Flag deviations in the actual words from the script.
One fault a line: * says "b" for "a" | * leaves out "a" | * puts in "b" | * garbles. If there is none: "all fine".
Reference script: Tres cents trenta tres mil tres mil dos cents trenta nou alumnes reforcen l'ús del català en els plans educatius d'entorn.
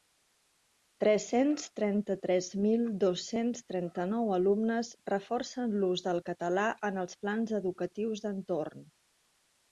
* leaves out "tres mil"